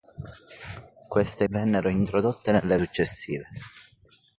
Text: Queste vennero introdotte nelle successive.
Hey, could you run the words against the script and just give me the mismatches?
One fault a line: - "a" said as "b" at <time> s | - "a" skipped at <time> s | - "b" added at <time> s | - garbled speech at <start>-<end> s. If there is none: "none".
none